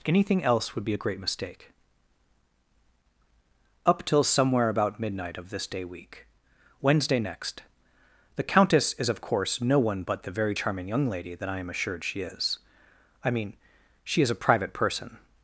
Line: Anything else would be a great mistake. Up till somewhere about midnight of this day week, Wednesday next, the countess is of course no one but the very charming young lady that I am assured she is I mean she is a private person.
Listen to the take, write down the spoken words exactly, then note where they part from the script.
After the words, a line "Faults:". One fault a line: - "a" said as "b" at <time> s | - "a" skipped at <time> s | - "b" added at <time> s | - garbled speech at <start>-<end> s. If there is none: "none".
Anything else would be a great mistake. Up till somewhere about midnight of this day week, Wednesday next, the countess is of course no one but the very charming young lady that I am assured she is I mean she is a private person.
Faults:
none